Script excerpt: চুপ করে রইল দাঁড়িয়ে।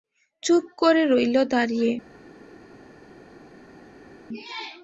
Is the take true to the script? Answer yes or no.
yes